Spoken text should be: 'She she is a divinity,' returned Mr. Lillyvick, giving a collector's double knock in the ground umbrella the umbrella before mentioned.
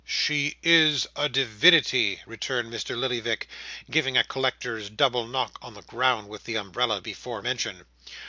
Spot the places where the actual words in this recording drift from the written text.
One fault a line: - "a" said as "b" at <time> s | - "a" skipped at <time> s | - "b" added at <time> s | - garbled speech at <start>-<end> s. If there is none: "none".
- "she" skipped at 0.6 s
- "in" said as "on" at 5.6 s
- "umbrella" said as "with" at 6.3 s